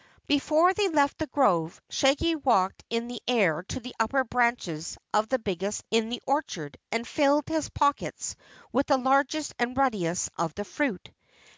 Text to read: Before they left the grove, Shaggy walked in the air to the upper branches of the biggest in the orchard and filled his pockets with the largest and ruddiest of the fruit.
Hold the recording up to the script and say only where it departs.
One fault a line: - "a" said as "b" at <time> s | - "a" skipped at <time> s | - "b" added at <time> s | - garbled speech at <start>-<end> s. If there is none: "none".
none